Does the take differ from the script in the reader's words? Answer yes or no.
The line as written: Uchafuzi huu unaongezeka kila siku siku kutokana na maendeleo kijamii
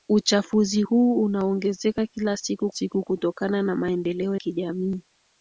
no